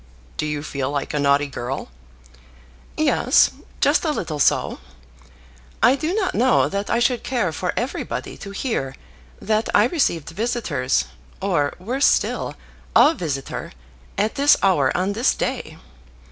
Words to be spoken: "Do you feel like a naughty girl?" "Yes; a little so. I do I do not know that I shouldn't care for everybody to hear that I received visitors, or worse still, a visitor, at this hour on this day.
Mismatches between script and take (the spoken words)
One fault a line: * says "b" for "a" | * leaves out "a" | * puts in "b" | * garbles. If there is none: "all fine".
* puts in "just"
* leaves out "I do"
* says "should" for "shouldn't"